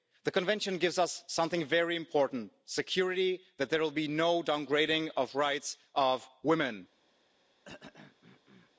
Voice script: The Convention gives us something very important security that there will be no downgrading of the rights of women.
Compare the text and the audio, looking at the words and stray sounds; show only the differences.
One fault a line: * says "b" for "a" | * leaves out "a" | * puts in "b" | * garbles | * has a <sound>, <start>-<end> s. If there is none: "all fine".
* has a throat clearing, 7.6-8.7 s